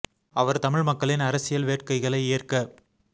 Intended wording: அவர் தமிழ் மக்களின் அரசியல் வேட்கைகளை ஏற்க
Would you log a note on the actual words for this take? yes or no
no